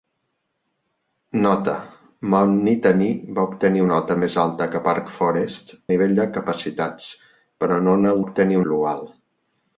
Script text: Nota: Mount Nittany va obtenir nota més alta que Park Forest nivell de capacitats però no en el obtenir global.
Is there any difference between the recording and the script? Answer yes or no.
no